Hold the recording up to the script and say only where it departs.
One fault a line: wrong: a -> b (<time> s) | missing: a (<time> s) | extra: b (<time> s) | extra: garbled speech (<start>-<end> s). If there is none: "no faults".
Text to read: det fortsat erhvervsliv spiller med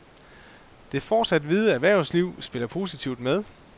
extra: hvide (1.4 s)
extra: positivt (2.7 s)